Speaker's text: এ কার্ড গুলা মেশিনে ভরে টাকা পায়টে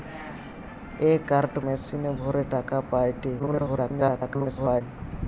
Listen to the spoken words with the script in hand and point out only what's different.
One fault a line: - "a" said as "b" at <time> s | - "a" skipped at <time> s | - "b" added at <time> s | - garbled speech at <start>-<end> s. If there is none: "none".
- "গুলা" skipped at 1.5 s
- garbled speech at 3.4-4.8 s